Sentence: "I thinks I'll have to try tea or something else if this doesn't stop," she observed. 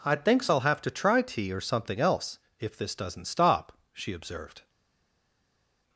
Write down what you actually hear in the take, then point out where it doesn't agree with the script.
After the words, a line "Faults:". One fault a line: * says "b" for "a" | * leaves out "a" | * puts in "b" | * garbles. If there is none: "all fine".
"I thinks I'll have to try tea or something else if this doesn't stop," she observed.
Faults:
all fine